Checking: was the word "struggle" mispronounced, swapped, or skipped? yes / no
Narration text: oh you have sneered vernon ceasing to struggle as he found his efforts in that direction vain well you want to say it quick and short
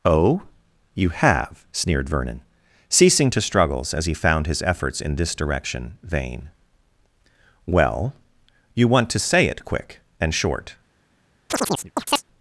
yes